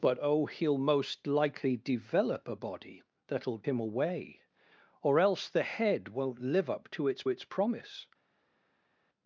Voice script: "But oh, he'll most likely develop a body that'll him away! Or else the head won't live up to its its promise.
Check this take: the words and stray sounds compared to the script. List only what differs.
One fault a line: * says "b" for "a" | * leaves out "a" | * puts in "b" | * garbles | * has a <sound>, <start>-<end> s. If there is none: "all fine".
all fine